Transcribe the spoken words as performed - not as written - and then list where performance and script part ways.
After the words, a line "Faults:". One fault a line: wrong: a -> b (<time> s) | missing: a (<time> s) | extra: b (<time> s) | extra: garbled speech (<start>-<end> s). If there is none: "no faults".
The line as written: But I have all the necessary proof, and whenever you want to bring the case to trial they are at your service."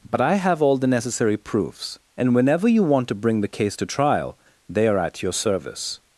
But I have all the necessary proofs, and whenever you want to bring the case to trial they are at your service."
Faults:
wrong: proof -> proofs (1.4 s)